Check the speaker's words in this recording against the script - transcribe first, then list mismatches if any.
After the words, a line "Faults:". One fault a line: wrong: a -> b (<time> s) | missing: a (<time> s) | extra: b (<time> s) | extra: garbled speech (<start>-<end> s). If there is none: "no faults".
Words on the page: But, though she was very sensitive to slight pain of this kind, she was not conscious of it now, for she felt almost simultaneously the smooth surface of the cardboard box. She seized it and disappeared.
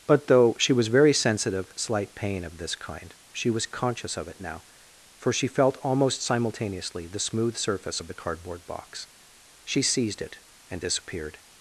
But, though she was very sensitive slight pain of this kind, she was conscious of it now, for she felt almost simultaneously the smooth surface of the cardboard box. She seized it and disappeared.
Faults:
missing: to (1.7 s)
missing: not (3.6 s)